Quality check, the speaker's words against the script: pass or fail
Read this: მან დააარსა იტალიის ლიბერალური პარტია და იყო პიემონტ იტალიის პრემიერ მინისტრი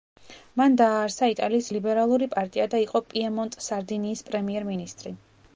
fail